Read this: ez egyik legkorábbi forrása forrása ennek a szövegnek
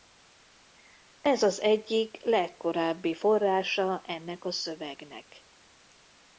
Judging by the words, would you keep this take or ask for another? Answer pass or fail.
fail